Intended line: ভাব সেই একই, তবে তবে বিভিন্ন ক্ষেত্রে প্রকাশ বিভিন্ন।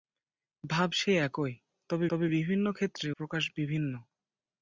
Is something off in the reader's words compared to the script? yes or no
no